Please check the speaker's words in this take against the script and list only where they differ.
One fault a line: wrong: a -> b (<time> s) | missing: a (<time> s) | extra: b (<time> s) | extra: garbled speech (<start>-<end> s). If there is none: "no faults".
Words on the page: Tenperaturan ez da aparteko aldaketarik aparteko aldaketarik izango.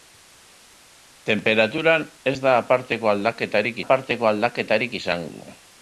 no faults